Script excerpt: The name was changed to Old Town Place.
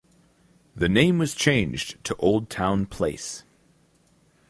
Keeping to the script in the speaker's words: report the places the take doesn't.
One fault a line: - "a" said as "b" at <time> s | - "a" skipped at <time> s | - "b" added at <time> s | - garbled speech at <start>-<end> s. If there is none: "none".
none